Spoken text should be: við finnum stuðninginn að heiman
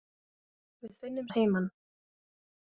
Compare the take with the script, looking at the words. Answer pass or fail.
fail